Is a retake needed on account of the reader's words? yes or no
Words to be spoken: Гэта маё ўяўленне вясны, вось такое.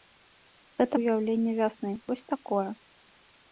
yes